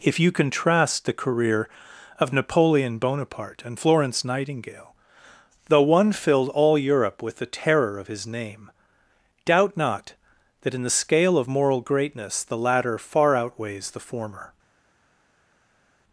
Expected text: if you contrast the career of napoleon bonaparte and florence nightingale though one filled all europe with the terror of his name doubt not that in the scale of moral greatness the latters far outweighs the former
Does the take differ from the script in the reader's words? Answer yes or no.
yes